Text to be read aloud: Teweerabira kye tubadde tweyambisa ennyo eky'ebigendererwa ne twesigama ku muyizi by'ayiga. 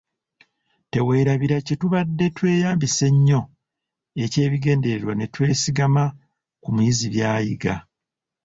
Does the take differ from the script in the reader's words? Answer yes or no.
no